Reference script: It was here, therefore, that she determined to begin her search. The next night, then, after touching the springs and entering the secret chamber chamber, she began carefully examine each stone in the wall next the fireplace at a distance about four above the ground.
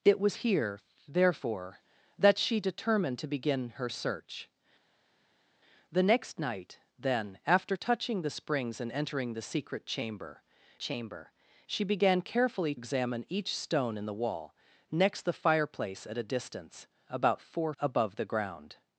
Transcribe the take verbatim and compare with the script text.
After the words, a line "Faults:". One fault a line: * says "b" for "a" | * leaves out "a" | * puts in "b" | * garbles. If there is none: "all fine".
It was here, therefore, that she determined to begin her search. The next night, then, after touching the springs and entering the secret chamber chamber, she began carefully examine each stone in the wall next the fireplace at a distance about four above the ground.
Faults:
all fine